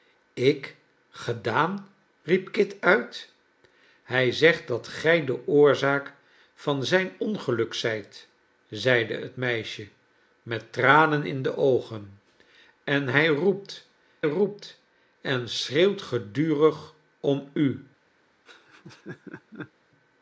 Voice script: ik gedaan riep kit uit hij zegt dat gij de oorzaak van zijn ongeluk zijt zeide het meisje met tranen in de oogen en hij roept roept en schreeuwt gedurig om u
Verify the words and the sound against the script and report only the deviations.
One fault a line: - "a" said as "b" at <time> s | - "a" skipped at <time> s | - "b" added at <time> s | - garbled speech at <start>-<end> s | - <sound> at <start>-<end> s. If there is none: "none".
- laugh at 18.5-19.7 s